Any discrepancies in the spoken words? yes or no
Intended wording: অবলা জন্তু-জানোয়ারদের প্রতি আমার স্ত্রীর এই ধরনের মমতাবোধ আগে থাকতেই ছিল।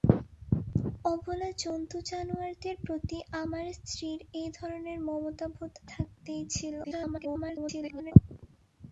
yes